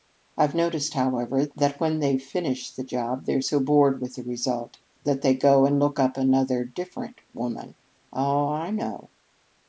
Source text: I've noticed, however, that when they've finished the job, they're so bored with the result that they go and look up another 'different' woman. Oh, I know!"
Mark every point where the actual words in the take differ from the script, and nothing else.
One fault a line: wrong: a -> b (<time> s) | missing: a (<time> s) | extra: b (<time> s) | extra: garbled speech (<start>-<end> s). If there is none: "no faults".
no faults